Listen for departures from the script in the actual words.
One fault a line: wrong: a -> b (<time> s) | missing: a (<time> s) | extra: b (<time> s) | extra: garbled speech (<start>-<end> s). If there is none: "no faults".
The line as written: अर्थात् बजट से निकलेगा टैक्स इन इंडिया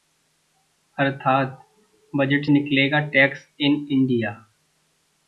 missing: से (2.5 s)